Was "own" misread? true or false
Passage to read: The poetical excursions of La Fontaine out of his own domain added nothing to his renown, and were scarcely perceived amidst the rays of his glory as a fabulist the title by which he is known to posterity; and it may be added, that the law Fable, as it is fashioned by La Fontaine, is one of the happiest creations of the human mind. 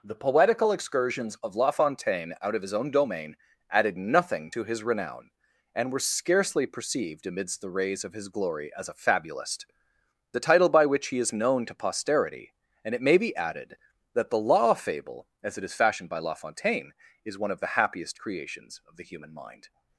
false